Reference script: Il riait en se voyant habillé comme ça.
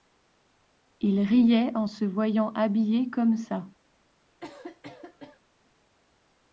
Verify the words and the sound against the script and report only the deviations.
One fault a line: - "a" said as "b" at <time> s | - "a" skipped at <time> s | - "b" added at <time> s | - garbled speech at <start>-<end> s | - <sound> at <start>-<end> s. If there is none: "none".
- cough at 4.4-5.4 s